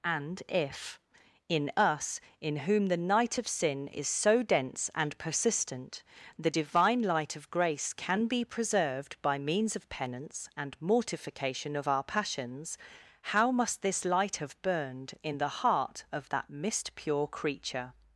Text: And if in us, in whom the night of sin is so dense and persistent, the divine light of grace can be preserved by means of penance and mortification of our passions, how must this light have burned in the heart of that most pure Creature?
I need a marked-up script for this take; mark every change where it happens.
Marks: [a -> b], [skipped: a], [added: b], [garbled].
And if in us, in whom the night of sin is so dense and persistent, the divine light of grace can be preserved by means of penance and mortification of our passions, how must this light have burned in the heart of that [most -> mist] pure Creature?